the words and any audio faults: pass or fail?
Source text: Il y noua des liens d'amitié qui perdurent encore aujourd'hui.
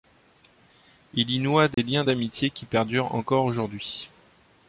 fail